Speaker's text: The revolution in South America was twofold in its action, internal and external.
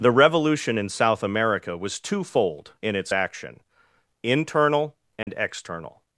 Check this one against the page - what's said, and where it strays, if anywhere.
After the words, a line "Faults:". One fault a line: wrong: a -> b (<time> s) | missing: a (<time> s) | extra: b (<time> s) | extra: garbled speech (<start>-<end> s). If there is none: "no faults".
The revolution in South America was twofold in its action, internal and external.
Faults:
no faults